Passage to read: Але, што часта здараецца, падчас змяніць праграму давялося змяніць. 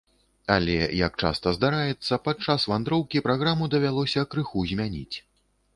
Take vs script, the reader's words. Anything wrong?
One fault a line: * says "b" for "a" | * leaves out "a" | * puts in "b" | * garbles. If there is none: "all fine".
* says "як" for "што"
* says "вандроўкі" for "змяніць"
* puts in "крыху"